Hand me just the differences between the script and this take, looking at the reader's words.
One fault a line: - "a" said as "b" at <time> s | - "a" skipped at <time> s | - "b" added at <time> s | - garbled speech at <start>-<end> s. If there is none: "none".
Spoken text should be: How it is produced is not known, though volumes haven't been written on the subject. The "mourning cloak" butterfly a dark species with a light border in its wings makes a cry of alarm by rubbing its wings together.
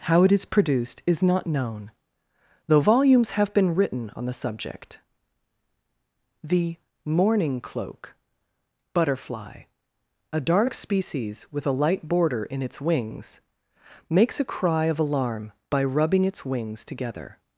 - "haven't" said as "have" at 3.3 s